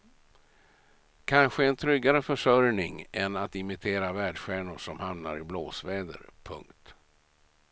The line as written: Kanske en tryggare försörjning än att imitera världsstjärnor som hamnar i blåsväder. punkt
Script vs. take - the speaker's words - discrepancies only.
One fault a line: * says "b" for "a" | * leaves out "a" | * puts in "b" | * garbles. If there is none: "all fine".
all fine